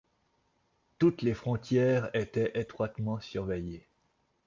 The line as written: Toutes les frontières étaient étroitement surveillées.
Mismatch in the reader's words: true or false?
false